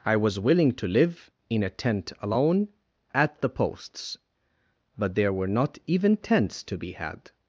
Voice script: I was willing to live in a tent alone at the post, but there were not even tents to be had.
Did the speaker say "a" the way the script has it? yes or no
yes